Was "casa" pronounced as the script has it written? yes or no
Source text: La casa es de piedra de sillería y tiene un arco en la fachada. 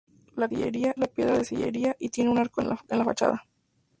no